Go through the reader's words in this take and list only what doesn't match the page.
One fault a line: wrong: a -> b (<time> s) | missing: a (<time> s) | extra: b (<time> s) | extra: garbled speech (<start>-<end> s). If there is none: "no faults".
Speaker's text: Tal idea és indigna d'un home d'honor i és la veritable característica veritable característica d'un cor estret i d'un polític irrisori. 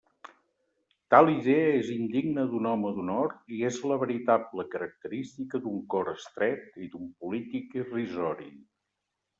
missing: veritable característica (5.6 s)